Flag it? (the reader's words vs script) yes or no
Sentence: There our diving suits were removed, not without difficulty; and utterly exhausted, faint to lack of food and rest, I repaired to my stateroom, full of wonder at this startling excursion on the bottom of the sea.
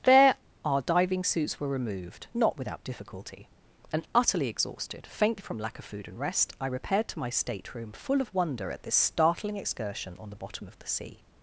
yes